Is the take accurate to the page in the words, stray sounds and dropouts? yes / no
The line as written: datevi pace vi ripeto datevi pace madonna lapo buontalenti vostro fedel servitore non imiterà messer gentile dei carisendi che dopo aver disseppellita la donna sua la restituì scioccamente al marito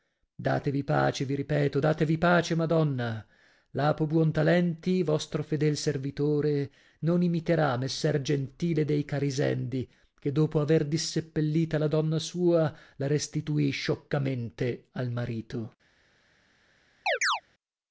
no